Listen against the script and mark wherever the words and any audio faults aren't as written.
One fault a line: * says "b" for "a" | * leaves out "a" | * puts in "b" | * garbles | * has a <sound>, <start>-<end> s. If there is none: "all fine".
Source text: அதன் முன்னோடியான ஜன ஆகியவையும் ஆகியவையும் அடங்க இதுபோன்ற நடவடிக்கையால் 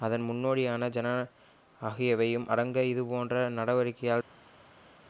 * leaves out "ஆகியவையும்"